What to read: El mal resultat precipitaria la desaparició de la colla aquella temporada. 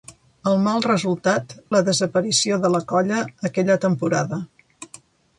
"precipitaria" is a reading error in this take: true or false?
true